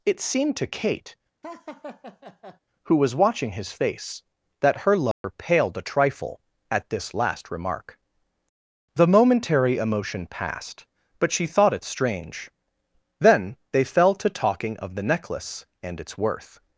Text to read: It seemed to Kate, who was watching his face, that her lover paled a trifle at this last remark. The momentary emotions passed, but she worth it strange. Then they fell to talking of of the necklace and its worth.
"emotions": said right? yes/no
no